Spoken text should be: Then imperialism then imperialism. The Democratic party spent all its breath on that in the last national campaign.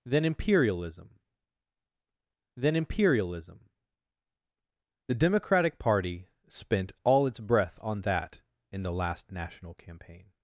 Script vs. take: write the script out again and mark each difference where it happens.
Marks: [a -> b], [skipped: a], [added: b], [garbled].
Then imperialism then imperialism. The Democratic party spent all its breath on that in the last national campaign.